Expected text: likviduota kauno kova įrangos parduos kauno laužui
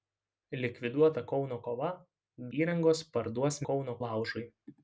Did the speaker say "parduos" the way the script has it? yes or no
yes